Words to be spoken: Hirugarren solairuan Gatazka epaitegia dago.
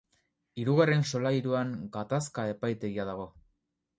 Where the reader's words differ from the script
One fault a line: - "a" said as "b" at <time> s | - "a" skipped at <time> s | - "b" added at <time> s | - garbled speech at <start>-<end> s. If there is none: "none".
none